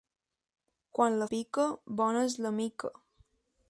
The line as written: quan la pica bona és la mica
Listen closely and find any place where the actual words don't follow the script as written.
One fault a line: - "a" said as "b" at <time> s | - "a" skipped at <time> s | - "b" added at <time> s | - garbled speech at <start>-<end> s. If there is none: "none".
none